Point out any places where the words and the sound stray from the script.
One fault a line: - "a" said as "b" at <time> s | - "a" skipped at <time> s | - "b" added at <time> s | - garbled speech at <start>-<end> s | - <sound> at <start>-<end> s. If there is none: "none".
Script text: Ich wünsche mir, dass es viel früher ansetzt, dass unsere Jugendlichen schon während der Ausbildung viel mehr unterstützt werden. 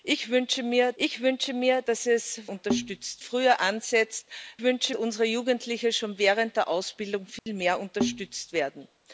- "ich wünsche mir" added at 1.0 s
- "viel" said as "unterstützt" at 2.5 s
- "dass" said as "wünsche" at 4.6 s
- dropout at 7.4-7.5 s